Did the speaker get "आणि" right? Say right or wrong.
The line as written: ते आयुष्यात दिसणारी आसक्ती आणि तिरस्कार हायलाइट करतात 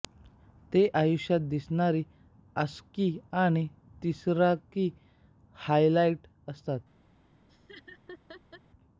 right